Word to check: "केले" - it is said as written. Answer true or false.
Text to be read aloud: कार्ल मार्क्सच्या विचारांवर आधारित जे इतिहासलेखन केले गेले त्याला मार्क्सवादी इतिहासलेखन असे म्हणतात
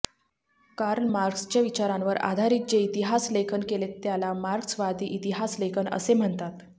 false